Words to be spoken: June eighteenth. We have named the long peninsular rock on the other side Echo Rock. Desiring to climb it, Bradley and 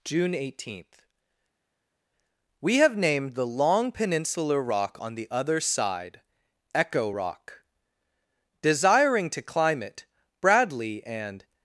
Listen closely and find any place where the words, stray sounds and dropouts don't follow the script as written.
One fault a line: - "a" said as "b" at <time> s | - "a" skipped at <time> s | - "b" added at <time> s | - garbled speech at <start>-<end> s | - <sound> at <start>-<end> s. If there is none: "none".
none